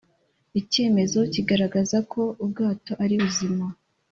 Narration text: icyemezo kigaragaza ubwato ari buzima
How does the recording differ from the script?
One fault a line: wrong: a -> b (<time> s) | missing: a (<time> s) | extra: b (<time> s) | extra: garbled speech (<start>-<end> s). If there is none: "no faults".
extra: ko (2.1 s)